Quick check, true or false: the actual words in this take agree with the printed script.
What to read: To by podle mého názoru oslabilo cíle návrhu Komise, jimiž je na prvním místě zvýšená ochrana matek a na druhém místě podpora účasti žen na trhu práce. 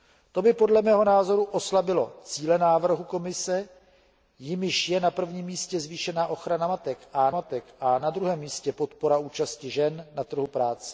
false